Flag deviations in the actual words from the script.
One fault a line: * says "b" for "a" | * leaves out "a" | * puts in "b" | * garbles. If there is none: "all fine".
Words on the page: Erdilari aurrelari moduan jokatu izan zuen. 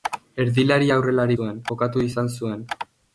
* says "zuen" for "moduan"